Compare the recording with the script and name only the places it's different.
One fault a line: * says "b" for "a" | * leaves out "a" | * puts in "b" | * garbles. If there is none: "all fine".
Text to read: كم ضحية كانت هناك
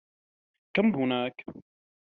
* leaves out "ضحية كانت"